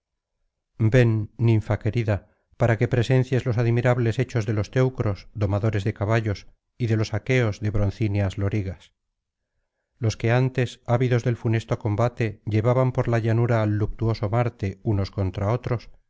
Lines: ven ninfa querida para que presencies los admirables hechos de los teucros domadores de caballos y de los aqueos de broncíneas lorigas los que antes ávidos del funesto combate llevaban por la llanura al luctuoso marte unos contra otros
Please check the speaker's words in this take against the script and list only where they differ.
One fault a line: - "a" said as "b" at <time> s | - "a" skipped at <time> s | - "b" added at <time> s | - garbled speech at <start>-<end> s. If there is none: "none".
none